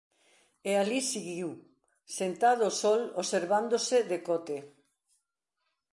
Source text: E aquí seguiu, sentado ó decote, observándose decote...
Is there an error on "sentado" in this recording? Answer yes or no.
no